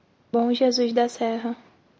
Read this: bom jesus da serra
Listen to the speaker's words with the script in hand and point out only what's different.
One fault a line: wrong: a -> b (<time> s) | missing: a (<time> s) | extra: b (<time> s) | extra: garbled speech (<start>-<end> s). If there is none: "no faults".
no faults